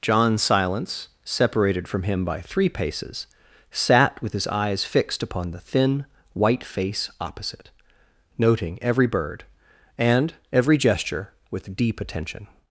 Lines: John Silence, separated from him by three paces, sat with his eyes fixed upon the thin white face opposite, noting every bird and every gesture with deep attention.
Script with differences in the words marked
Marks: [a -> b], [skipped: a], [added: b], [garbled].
John Silence, separated from him by three paces, sat with his eyes fixed upon the thin white face opposite, noting every bird and every gesture with deep attention.